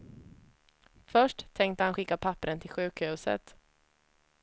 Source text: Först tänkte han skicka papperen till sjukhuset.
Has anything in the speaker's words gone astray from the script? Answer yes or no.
no